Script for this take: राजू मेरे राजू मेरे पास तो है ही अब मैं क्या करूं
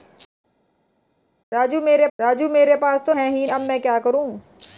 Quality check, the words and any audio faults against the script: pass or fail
pass